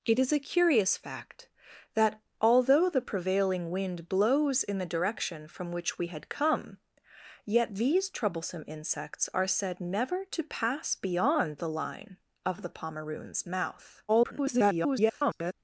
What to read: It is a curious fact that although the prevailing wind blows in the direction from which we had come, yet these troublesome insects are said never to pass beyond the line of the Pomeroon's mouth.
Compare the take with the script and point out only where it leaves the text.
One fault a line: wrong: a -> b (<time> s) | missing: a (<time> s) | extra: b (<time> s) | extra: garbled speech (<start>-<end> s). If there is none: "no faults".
extra: garbled speech (14.1-15.5 s)